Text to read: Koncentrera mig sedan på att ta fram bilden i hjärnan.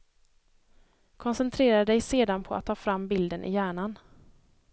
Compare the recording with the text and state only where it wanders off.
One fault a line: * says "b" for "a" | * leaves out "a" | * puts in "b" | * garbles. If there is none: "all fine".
* says "dig" for "mig"